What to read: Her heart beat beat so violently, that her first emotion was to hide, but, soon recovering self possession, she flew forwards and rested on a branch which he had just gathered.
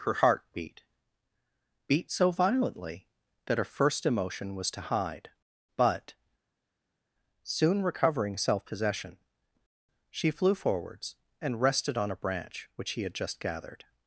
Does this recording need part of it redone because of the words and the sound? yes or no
no